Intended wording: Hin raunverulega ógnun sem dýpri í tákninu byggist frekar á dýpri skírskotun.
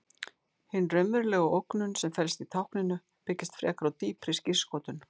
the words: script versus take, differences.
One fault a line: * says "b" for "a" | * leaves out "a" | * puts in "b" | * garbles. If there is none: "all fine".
* says "felst" for "dýpri"